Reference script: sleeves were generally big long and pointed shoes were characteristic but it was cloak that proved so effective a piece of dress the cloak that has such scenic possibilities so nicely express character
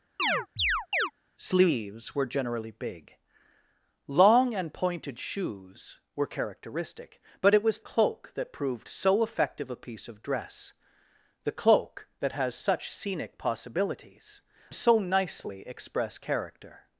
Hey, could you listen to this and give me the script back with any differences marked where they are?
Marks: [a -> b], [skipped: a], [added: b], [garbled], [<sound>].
[chirp] sleeves were generally big long and pointed shoes were characteristic but it was cloak that proved so effective a piece of dress the cloak that has such scenic possibilities so nicely express character